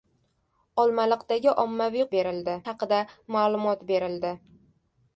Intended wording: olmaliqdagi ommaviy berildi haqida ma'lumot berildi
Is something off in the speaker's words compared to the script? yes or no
no